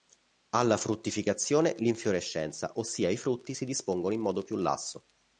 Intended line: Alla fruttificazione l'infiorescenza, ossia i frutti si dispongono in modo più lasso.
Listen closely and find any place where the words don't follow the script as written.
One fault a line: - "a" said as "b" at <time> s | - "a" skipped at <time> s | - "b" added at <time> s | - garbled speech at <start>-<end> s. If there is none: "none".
none